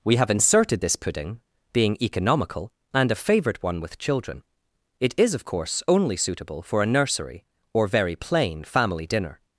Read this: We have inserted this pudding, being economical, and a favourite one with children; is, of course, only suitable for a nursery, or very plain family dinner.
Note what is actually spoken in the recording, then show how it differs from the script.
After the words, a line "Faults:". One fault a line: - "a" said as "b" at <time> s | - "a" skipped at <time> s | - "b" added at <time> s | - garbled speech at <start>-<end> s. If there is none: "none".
We have inserted this pudding, being economical, and a favourite one with children; it is, of course, only suitable for a nursery, or very plain family dinner.
Faults:
- "it" added at 5.0 s